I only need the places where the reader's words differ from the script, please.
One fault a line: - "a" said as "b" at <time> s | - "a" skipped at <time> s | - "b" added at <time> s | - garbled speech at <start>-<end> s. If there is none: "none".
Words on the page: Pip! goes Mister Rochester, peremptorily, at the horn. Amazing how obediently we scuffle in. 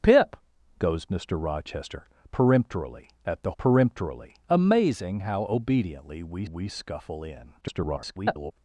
- "horn" said as "peremptorily" at 3.6 s
- "we" added at 6.4 s
- garbled speech at 7.6-8.5 s